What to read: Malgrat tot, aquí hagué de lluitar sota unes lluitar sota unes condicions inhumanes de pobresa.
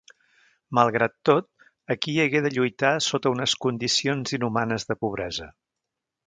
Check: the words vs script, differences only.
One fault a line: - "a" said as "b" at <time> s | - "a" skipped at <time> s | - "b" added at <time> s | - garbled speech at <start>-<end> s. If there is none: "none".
- "lluitar sota unes" skipped at 3.5 s